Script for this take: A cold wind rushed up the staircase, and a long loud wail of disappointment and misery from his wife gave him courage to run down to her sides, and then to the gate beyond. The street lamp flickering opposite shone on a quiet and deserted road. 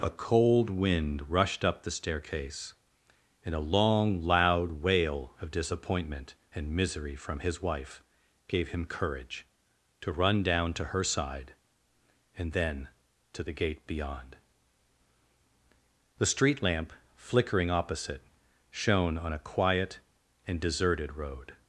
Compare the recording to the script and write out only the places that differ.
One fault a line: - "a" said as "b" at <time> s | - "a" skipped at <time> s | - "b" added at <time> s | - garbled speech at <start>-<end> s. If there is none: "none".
- "sides" said as "side" at 11.0 s